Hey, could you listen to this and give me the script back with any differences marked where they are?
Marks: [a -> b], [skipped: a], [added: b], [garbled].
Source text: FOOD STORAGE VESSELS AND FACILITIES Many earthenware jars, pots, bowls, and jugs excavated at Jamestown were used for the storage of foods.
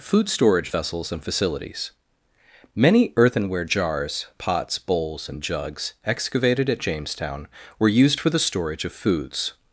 FOOD STORAGE VESSELS AND FACILITIES Many earthenware jars, pots, bowls, and jugs excavated at Jamestown were used for the storage of foods.